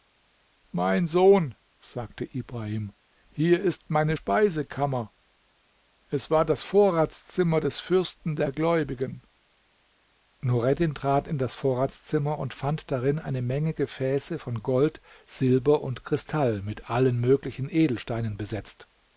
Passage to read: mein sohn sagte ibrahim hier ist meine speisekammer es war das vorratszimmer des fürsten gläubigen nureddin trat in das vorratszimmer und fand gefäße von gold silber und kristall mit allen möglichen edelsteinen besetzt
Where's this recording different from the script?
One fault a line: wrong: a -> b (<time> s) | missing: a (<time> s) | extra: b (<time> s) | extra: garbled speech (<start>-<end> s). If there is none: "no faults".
extra: der (8.4 s)
extra: darin eine menge (12.9 s)